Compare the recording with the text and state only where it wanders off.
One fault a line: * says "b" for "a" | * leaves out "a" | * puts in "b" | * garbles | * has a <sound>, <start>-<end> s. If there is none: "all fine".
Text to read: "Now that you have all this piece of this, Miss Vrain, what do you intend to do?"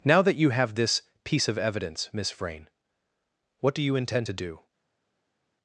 * leaves out "all"
* says "evidence" for "this"